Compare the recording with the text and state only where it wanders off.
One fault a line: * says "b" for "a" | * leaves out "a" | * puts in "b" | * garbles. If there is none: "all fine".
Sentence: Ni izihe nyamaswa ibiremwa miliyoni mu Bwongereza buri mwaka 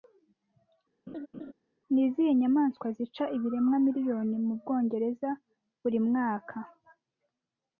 * puts in "zica"